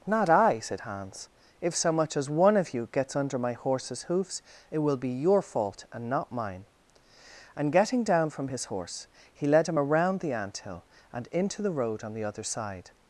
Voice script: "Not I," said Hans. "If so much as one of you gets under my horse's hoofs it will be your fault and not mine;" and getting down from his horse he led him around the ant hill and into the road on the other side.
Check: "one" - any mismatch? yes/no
no